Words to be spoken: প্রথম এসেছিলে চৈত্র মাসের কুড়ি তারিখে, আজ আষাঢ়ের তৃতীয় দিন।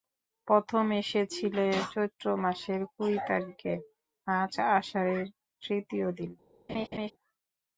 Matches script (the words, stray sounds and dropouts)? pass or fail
fail